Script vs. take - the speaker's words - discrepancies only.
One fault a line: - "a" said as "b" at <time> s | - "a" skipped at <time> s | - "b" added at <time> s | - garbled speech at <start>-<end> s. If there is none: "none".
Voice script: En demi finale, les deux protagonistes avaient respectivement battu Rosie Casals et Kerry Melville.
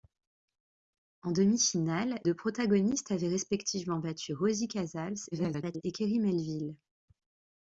- "les" skipped at 2.2 s
- garbled speech at 5.3-5.8 s